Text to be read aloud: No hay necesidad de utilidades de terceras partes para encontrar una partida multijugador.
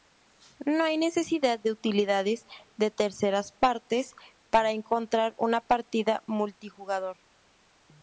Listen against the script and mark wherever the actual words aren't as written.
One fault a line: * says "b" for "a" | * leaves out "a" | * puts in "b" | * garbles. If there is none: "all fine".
all fine